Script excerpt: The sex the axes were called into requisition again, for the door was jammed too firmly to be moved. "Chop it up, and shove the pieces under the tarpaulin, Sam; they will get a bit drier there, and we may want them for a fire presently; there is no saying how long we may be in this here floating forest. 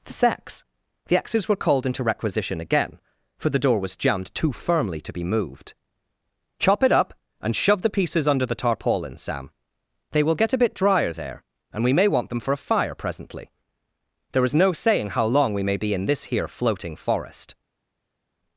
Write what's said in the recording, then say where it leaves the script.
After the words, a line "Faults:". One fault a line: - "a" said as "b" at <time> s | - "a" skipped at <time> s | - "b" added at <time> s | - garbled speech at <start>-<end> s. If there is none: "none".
The sex the axes were called into requisition again, for the door was jammed too firmly to be moved. "Chop it up, and shove the pieces under the tarpaulin, Sam; they will get a bit drier there, and we may want them for a fire presently; there is no saying how long we may be in this here floating forest.
Faults:
none